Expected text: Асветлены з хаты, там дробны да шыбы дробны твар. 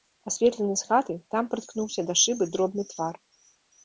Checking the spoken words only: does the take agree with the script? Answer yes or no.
no